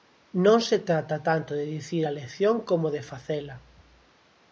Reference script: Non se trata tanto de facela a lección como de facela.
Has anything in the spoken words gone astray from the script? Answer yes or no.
yes